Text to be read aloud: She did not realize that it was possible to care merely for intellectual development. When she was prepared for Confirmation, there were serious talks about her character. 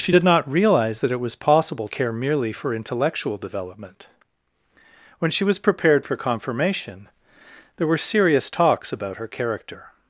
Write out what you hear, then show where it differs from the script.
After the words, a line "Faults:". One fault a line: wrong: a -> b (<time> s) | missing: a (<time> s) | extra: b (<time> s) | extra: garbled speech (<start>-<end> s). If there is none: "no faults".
She did not realize that it was possible care merely for intellectual development. When she was prepared for Confirmation, there were serious talks about her character.
Faults:
missing: to (1.9 s)